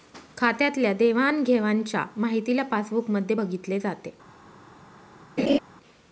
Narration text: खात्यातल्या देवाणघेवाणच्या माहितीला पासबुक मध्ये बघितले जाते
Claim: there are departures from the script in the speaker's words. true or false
false